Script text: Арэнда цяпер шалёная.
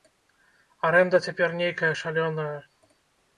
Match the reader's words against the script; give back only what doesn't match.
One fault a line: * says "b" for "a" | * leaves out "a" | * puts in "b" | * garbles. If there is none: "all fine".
* puts in "нейкая"